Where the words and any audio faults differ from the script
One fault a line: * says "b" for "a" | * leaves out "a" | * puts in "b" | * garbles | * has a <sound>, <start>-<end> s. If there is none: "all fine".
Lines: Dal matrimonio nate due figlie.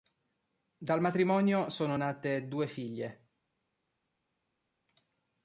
* puts in "sono"